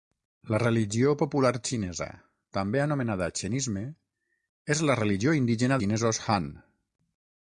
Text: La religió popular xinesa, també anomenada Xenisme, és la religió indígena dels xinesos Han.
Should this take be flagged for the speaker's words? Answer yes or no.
yes